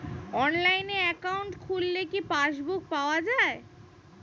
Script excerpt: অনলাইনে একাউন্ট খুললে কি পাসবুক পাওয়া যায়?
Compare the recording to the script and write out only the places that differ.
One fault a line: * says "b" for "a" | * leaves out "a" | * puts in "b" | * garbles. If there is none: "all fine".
all fine